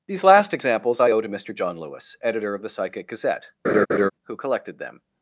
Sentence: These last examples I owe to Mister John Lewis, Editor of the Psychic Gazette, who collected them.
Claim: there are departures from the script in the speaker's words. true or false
false